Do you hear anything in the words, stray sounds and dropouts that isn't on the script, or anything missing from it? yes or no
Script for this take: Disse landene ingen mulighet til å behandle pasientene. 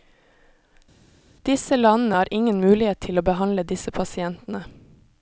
yes